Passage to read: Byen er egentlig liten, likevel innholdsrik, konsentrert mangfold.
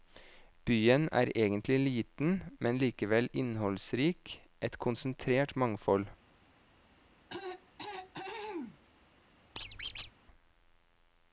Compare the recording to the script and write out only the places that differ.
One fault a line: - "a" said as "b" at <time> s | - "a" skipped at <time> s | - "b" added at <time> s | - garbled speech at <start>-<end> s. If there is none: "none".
- "men" added at 2.6 s
- "et" added at 4.6 s